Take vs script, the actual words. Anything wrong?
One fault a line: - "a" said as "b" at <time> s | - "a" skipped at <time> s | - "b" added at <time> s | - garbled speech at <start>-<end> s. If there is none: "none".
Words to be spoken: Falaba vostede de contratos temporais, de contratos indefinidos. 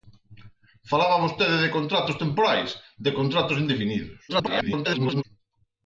- garbled speech at 4.3-5.2 s